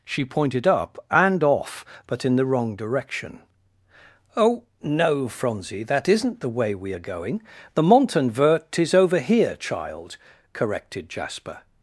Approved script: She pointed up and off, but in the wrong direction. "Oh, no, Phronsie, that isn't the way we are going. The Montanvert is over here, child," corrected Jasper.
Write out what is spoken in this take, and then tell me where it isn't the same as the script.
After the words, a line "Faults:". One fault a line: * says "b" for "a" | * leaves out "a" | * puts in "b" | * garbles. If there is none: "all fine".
She pointed up and off, but in the wrong direction. "Oh, no, Phronsie, that isn't the way we are going. The Montanvert is over here, child," corrected Jasper.
Faults:
all fine